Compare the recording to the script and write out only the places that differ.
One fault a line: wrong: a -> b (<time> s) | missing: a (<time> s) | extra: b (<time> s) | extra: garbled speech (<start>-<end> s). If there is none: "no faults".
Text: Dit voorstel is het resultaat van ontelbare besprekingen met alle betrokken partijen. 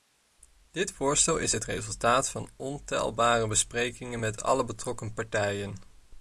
no faults